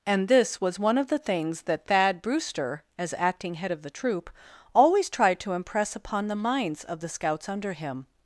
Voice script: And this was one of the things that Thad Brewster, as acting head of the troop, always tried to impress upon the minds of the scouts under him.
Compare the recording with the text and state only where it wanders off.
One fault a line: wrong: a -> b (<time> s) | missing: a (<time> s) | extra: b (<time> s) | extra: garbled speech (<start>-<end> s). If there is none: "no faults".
no faults